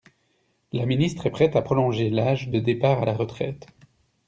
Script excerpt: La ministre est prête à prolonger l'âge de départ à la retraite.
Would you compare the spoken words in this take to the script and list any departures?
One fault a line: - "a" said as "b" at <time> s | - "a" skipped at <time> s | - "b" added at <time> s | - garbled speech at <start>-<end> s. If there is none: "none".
none